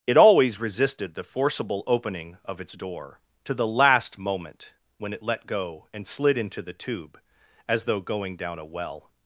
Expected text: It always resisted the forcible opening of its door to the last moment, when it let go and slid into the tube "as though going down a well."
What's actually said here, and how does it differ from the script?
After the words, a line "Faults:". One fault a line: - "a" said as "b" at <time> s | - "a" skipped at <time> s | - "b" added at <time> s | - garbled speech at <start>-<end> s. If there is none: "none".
It always resisted the forcible opening of its door to the last moment, when it let go and slid into the tube "as though going down a well."
Faults:
none